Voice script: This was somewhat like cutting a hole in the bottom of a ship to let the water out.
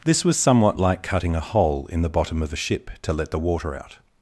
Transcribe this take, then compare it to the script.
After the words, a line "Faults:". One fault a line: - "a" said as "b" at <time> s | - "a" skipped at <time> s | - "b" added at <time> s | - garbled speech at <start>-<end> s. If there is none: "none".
This was somewhat like cutting a hole in the bottom of a ship to let the water out.
Faults:
none